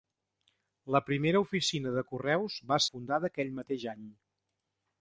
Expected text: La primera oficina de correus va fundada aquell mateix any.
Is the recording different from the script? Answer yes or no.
no